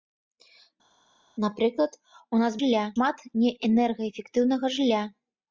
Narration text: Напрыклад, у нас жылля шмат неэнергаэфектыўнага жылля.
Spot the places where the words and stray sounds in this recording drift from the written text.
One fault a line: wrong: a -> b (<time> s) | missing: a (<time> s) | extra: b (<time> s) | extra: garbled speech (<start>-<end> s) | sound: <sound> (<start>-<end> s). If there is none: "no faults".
no faults